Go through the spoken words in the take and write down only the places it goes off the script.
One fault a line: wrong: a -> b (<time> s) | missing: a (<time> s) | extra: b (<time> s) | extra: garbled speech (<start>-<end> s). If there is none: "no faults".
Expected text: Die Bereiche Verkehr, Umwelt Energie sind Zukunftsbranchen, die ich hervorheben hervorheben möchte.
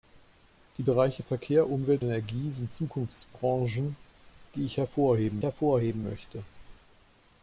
no faults